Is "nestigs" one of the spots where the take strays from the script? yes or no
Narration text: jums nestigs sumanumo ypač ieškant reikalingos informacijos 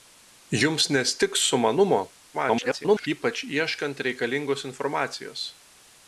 no